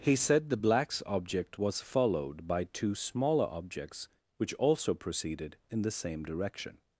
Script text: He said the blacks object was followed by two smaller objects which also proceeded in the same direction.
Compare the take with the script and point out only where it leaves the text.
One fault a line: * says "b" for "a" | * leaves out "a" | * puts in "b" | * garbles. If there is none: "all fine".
all fine